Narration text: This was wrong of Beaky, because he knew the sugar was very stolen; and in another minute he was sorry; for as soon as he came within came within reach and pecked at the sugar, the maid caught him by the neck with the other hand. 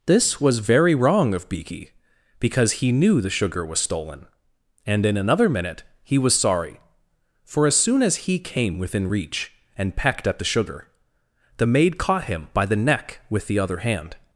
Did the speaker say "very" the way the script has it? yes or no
no